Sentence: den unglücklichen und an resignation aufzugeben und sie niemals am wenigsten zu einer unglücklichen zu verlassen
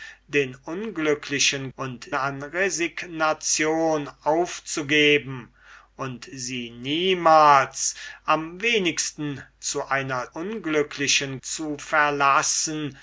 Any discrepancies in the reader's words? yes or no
no